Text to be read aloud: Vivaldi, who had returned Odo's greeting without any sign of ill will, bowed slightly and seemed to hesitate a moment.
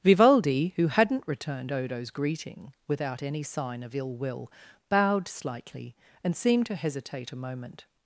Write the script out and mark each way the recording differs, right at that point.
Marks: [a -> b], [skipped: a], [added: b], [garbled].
Vivaldi, who [had -> hadn't] returned Odo's greeting without any sign of ill will, bowed slightly and seemed to hesitate a moment.